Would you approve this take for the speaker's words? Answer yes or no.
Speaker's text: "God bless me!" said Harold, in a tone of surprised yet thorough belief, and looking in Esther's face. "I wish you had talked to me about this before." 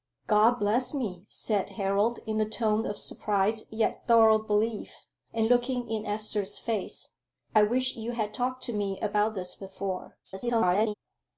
no